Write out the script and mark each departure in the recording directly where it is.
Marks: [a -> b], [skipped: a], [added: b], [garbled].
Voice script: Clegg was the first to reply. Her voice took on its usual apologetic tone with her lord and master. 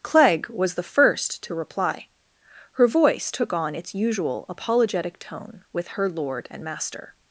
Clegg was the first to reply. Her voice took on its usual apologetic tone with her lord and master.